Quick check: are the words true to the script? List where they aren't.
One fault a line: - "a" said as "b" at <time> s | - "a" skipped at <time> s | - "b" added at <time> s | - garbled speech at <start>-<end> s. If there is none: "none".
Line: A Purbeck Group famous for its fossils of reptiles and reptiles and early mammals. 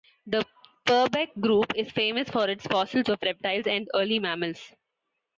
- "A" said as "The" at 0.2 s
- "is" added at 1.8 s
- "reptiles and" skipped at 3.9 s